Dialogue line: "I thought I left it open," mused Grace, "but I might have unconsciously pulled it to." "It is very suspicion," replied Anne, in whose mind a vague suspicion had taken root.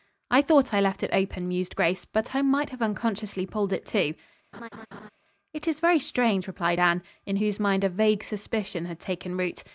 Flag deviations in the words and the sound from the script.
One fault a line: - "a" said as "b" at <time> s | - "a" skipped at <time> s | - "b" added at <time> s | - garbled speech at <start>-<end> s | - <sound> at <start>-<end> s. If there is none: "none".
- laugh at 4.5-5.1 s
- "suspicion" said as "strange" at 6.0 s